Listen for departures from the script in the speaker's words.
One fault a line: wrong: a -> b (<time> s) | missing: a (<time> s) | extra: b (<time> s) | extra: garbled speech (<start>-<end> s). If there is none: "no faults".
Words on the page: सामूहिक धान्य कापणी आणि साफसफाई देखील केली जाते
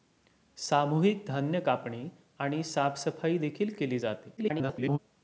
extra: garbled speech (4.4-5.0 s)